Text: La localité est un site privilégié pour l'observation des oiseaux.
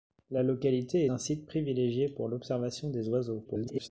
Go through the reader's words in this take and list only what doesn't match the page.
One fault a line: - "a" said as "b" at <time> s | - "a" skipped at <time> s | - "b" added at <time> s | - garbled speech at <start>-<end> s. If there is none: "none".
- "est" skipped at 1.1 s
- garbled speech at 3.4-3.9 s